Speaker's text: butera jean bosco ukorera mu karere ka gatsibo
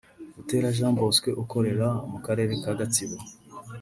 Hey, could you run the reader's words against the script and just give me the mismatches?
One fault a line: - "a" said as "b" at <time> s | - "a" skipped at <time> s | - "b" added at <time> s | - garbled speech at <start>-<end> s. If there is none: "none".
none